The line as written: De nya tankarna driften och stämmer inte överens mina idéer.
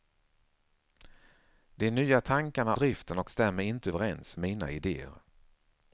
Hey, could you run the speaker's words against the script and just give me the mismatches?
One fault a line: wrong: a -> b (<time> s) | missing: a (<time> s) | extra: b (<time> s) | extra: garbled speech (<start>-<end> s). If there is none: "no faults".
no faults